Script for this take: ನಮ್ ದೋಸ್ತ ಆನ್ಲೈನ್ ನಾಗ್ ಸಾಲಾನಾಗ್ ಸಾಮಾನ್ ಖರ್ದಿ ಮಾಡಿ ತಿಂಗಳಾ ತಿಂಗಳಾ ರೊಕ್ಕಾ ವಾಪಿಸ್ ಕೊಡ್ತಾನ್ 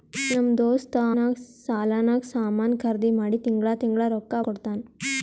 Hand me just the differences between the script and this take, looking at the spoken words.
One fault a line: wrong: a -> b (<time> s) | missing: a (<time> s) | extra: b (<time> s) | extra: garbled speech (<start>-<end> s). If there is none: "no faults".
missing: ಆನ್ಲೈನ್ (0.9 s)
missing: ವಾಪಿಸ್ (4.4 s)